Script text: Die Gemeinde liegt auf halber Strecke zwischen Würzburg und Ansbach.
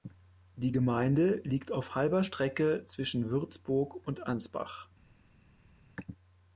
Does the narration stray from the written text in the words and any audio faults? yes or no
no